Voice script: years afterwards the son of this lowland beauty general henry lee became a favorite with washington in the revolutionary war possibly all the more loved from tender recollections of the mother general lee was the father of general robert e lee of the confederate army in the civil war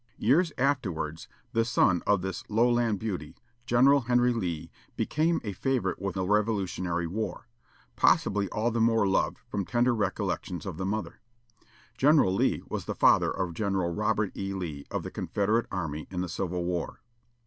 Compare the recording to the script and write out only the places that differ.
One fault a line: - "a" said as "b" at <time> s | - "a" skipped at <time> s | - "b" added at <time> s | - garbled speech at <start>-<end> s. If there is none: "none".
- "washington in" skipped at 6.2 s